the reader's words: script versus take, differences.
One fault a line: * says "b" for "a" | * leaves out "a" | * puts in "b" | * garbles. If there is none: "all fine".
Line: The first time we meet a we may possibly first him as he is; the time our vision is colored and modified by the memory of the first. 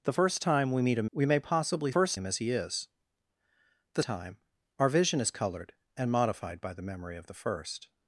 all fine